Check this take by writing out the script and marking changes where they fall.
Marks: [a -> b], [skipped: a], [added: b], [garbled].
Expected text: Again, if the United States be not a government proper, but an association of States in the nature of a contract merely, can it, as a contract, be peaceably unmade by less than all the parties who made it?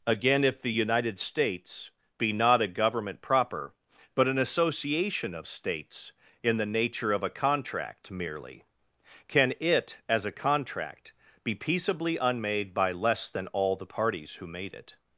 Again, if the United States be not a government proper, but an association of States in the nature of a contract merely, can it, as a contract, be peaceably unmade by less than all the parties who made it?